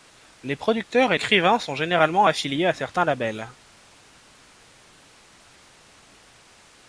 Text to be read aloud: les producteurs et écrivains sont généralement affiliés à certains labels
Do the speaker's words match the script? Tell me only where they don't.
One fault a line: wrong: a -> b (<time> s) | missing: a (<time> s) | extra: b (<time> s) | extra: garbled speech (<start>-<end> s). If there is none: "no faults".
no faults